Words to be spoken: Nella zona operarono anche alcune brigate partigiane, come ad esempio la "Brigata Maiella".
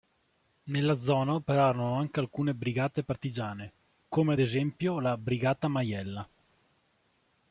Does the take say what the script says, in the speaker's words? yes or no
yes